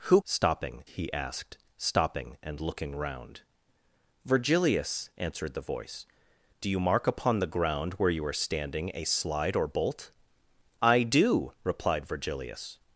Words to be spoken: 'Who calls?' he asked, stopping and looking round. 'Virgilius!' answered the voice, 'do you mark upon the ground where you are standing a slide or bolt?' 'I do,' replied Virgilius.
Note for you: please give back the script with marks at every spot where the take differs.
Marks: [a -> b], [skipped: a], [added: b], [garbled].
'Who [calls?' -> stopping] he asked, stopping and looking round. 'Virgilius!' answered the voice, 'do you mark upon the ground where you are standing a slide or bolt?' 'I do,' replied Virgilius.